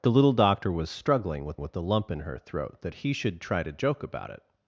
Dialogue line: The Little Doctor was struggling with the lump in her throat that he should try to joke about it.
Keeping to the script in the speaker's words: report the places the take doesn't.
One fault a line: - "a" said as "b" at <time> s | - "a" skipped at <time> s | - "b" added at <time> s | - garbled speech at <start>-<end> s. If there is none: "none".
- "with" added at 1.6 s